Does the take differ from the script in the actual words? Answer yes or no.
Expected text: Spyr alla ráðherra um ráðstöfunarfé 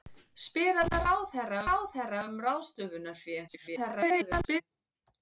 yes